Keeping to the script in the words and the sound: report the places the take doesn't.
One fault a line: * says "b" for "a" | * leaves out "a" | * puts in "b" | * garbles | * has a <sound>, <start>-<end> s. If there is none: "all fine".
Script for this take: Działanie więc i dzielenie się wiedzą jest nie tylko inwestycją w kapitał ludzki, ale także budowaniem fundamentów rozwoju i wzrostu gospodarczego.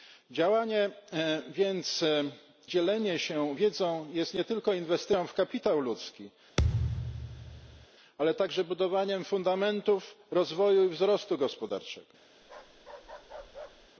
* leaves out "i"
* has a thud, 6.6-7.9 s
* has a bark, 12.4-13.9 s